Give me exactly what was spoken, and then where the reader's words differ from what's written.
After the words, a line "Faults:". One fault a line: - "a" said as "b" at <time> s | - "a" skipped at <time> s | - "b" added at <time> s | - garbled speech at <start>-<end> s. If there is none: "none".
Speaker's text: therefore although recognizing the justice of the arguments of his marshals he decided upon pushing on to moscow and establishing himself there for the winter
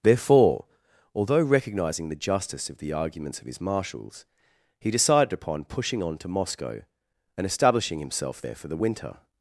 therefore although recognizing the justice of the arguments of his marshals he decided upon pushing on to moscow and establishing himself there for the winter
Faults:
none